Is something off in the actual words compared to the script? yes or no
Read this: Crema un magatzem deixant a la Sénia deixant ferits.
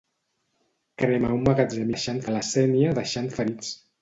no